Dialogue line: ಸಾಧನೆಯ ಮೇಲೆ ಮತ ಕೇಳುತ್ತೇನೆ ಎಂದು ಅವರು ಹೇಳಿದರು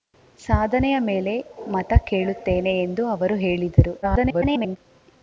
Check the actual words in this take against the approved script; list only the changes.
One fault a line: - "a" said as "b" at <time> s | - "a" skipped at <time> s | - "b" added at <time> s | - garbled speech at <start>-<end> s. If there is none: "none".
- garbled speech at 4.0-4.8 s